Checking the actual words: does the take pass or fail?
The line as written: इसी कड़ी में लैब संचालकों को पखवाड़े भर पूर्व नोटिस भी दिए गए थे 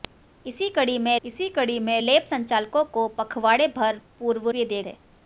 fail